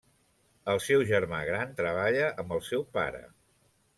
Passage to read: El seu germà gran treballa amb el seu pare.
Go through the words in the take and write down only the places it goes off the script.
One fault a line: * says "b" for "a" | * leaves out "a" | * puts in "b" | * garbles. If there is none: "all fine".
all fine